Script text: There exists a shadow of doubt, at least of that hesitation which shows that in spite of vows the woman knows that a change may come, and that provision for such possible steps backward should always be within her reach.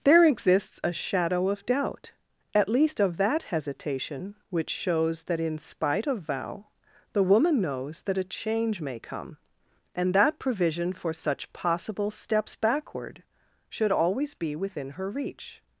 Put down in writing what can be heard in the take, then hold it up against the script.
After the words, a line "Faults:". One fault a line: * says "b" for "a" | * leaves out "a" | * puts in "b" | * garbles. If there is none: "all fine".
There exists a shadow of doubt, at least of that hesitation which shows that in spite of vow the woman knows that a change may come, and that provision for such possible steps backward should always be within her reach.
Faults:
* says "vow" for "vows"